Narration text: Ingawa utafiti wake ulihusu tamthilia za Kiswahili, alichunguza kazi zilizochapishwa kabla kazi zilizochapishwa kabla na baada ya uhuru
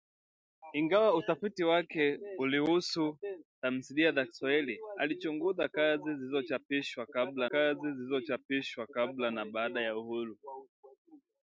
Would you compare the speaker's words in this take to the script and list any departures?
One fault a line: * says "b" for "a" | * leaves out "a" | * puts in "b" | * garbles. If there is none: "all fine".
all fine